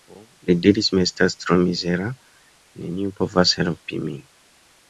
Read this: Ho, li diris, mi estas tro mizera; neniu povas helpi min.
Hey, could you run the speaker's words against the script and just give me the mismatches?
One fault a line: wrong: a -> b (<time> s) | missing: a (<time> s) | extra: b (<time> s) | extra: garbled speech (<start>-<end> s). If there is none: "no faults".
no faults